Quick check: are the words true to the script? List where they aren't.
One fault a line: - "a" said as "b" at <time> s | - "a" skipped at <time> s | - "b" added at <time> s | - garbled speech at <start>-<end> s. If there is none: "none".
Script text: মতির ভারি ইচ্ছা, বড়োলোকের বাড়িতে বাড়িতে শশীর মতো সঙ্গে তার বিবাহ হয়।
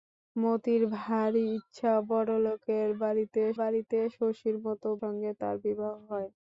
none